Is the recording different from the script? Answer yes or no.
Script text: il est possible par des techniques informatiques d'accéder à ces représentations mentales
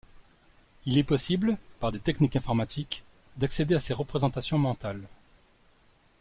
no